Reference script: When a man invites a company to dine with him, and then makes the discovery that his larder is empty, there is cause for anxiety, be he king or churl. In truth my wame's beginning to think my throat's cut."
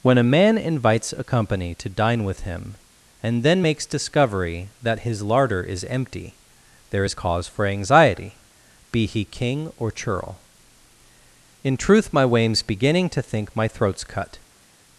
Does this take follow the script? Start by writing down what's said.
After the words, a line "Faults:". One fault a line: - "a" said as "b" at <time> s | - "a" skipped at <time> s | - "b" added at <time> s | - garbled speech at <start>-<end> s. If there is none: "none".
When a man invites a company to dine with him, and then makes discovery that his larder is empty, there is cause for anxiety, be he king or churl. In truth my wame's beginning to think my throat's cut."
Faults:
- "the" skipped at 3.8 s